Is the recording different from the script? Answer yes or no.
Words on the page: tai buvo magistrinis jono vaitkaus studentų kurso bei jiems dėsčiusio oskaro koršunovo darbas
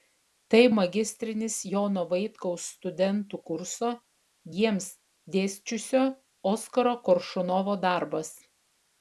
yes